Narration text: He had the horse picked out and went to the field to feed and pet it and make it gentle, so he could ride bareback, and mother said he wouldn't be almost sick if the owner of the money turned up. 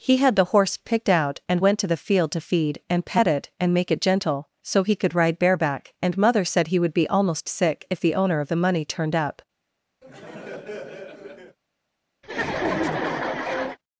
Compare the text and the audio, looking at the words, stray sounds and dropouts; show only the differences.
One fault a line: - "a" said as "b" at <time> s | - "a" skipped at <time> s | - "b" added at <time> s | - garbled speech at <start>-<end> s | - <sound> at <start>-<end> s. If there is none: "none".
- "wouldn't" said as "would" at 6.8 s
- laugh at 10.0-11.6 s
- laugh at 12.2-13.8 s